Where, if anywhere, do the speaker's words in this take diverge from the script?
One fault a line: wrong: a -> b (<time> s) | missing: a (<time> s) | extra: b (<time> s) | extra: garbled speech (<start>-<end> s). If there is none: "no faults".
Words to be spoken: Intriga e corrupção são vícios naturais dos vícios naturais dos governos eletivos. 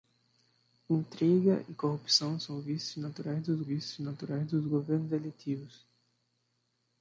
no faults